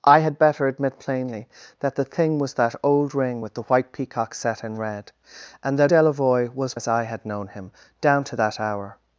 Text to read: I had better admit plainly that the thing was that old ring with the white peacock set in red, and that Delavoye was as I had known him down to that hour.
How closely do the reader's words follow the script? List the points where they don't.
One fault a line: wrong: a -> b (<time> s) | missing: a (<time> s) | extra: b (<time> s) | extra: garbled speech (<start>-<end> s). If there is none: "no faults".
no faults